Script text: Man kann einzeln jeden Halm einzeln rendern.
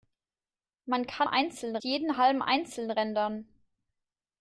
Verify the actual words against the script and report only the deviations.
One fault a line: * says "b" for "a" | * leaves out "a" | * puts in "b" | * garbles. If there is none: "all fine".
all fine